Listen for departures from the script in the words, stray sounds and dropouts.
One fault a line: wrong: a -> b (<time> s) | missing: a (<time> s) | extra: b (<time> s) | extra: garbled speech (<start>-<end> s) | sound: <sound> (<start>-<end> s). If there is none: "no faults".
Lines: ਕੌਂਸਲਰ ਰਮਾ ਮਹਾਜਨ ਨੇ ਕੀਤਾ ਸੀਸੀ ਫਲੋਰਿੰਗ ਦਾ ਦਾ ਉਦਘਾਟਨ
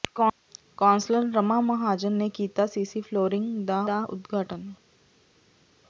no faults